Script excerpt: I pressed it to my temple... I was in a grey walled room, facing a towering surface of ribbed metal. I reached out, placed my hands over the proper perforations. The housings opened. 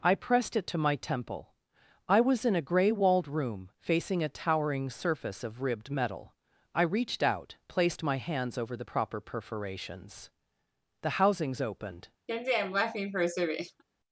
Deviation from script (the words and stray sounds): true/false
true